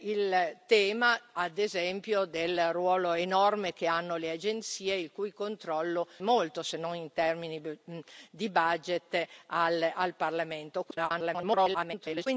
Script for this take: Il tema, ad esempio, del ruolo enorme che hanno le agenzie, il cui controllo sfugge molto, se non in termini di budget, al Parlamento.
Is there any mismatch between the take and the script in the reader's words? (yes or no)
yes